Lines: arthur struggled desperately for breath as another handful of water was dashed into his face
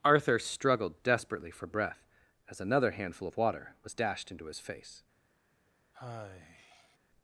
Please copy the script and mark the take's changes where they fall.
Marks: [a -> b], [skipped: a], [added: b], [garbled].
arthur struggled desperately for breath as another handful of water was dashed into his face